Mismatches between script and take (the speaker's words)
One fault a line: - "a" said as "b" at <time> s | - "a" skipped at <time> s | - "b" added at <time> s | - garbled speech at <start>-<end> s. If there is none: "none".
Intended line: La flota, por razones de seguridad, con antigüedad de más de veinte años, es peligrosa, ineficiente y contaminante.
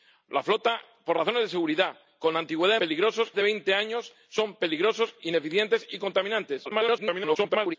- "más" said as "peligrosa" at 2.8 s
- garbled speech at 6.6-7.8 s